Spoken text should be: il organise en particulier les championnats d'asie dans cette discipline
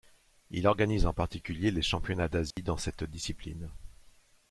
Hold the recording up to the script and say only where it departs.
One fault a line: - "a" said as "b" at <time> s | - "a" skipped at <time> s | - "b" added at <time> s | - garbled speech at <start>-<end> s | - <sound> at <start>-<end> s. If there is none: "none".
- dropout at 2.5-2.6 s